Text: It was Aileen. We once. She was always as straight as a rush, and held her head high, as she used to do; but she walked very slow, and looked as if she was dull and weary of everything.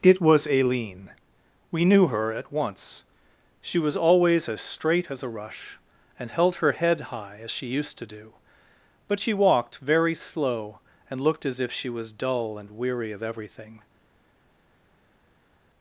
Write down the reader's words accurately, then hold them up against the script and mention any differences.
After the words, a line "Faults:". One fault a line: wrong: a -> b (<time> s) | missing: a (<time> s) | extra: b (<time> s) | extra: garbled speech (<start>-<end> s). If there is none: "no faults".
It was Aileen. We knew her at once. She was always as straight as a rush, and held her head high, as she used to do; but she walked very slow, and looked as if she was dull and weary of everything.
Faults:
extra: knew her at (1.9 s)